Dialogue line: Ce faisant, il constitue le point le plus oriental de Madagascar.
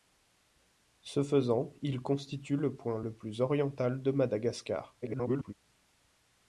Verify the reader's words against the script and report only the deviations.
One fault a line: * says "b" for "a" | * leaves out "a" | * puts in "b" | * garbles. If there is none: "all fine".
* garbles